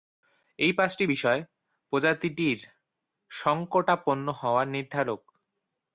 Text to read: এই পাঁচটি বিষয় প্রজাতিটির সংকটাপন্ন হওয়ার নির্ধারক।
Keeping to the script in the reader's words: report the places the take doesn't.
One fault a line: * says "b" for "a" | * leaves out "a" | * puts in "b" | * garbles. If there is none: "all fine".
all fine